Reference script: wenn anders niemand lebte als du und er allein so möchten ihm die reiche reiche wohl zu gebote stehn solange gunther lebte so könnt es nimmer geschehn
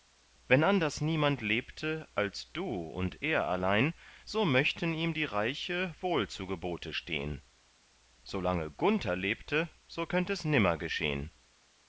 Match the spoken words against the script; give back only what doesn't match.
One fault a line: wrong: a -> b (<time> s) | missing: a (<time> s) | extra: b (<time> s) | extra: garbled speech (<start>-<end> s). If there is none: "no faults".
missing: reiche (5.9 s)